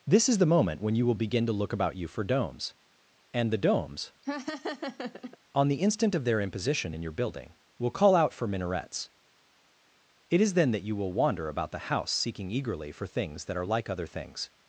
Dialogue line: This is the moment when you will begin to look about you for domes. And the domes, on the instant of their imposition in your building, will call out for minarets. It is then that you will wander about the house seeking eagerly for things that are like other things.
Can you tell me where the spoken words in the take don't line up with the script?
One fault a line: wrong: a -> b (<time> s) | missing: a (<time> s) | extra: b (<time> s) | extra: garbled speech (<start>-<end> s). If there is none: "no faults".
no faults